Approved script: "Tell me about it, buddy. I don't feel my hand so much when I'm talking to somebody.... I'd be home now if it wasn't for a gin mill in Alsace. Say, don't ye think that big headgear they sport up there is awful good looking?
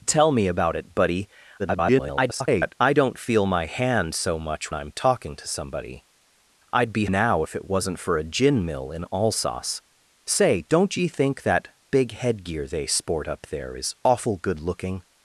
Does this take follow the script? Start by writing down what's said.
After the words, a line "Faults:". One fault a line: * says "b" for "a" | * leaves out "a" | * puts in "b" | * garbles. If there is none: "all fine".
"Tell me about it, buddy. [garbled] I don't feel my hand so much I'm talking to somebody.... I'd be now if it wasn't for a gin mill in Alsace. Say, don't ye think that big headgear they sport up there is awful good looking?
Faults:
* garbles
* leaves out "when"
* leaves out "home"